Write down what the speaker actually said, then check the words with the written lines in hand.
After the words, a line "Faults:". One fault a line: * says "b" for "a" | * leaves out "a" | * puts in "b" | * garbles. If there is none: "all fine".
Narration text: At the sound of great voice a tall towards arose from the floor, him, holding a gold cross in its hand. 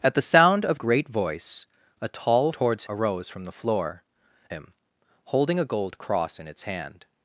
At the sound of great voice a tall towards arose from the floor, him, holding a gold cross in its hand.
Faults:
all fine